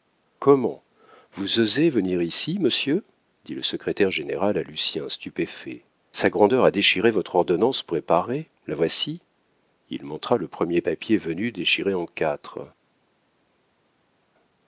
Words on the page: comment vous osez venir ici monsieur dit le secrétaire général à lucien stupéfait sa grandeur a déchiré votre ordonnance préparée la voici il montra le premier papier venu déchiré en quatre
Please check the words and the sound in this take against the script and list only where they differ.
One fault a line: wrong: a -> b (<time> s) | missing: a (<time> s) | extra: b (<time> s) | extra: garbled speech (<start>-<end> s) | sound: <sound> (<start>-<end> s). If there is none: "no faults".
no faults